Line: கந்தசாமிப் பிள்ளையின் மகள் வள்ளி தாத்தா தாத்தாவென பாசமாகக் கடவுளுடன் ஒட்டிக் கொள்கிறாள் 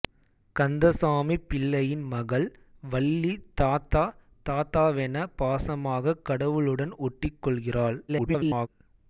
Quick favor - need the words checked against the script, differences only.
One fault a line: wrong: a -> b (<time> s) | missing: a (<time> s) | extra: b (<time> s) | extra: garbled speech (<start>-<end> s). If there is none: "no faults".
extra: garbled speech (8.1-8.7 s)